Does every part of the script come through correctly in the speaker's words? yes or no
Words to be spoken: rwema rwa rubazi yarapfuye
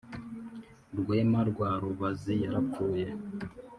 yes